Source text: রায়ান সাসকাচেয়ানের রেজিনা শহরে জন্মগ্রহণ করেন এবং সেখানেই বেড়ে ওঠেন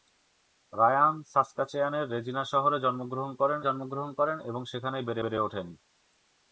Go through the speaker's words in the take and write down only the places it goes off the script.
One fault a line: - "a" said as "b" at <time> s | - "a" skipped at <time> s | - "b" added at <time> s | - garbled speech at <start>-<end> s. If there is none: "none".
- "জন্মগ্রহণ করেন" added at 3.6 s
- "বেড়ে" added at 5.2 s